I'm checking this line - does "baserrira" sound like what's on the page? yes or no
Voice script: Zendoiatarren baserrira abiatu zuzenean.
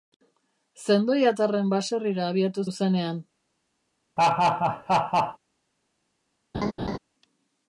yes